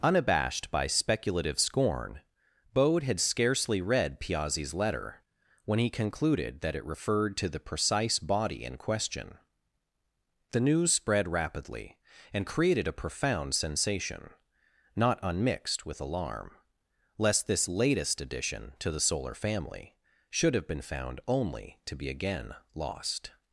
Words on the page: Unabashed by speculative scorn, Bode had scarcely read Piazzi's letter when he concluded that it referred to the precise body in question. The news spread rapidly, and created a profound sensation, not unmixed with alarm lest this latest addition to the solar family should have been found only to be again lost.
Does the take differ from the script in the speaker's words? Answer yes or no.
no